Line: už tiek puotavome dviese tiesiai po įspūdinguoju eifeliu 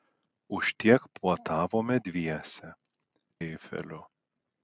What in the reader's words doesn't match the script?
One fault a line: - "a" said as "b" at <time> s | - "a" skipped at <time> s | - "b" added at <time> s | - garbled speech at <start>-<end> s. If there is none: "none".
- "tiesiai po įspūdinguoju" skipped at 2.7 s